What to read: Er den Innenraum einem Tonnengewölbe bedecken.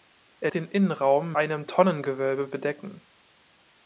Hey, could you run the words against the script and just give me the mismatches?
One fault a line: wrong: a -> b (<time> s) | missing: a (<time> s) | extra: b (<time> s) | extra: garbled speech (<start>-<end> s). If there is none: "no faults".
no faults